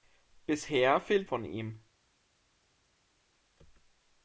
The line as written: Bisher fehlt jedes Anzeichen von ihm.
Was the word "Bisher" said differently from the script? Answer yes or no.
no